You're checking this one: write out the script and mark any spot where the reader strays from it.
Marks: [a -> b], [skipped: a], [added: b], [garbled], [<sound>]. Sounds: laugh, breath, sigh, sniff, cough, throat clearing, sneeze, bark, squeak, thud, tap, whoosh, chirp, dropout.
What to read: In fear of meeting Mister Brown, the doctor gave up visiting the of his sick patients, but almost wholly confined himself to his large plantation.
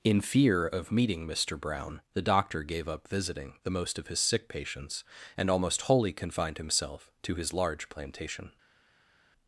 In fear of meeting Mister Brown, the doctor gave up visiting the [added: most] of his sick patients, [but -> and] almost wholly confined himself to his large plantation.